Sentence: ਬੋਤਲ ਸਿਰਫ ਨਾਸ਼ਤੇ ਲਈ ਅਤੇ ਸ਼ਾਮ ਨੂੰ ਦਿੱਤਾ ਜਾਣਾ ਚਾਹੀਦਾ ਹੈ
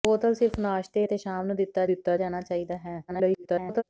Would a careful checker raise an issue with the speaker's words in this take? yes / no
yes